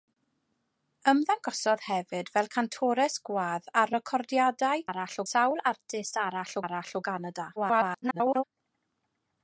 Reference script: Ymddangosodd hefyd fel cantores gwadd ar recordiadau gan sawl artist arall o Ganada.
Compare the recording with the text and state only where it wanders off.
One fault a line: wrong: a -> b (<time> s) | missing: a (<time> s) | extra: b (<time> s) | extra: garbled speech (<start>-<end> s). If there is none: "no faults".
wrong: gan -> arall (4.9 s)
extra: arall (6.7 s)
extra: garbled speech (7.6-8.4 s)